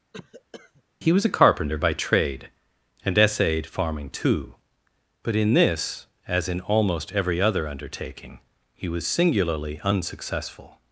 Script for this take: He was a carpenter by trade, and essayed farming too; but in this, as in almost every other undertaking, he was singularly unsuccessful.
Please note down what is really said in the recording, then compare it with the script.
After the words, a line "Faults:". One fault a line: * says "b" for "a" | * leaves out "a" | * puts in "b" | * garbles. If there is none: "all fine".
He was a carpenter by trade, and essayed farming too; but in this, as in almost every other undertaking, he was singularly unsuccessful.
Faults:
all fine